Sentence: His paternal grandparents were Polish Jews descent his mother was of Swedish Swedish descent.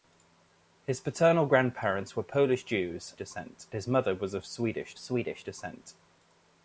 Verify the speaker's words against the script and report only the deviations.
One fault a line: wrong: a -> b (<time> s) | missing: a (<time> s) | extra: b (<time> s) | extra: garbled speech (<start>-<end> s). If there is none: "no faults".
no faults